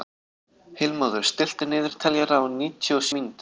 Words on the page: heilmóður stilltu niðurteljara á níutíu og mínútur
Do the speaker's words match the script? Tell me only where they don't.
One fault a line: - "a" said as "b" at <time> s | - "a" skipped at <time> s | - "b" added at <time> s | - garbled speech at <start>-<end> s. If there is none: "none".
none